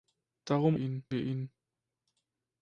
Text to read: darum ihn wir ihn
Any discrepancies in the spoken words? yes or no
no